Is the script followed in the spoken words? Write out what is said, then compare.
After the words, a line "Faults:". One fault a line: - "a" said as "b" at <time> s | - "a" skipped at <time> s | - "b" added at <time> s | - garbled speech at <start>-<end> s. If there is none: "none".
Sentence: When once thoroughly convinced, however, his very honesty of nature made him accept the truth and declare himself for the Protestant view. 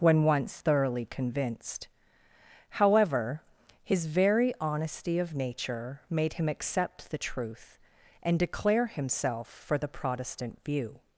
When once thoroughly convinced, however, his very honesty of nature made him accept the truth and declare himself for the Protestant view.
Faults:
none